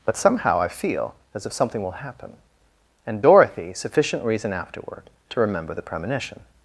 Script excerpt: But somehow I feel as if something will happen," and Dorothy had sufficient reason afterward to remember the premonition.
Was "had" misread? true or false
true